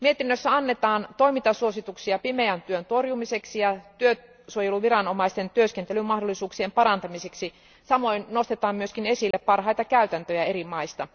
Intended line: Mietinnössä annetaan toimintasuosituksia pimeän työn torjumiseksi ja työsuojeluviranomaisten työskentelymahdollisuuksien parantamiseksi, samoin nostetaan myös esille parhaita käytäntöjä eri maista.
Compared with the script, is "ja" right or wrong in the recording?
right